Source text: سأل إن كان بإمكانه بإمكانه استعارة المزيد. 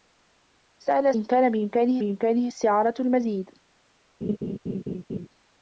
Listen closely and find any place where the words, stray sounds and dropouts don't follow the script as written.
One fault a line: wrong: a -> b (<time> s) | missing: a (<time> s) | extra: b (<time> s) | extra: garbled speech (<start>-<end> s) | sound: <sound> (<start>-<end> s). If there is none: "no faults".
sound: laugh (4.2-5.3 s)